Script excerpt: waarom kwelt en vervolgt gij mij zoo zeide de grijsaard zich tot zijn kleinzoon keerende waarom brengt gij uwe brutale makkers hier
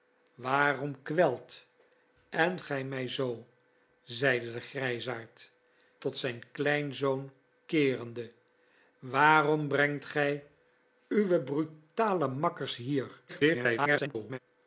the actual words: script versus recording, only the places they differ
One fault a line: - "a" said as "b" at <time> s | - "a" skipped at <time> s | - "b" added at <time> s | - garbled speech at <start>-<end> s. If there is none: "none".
- "vervolgt" skipped at 2.6 s
- "zich" skipped at 5.5 s
- garbled speech at 13.3-14.4 s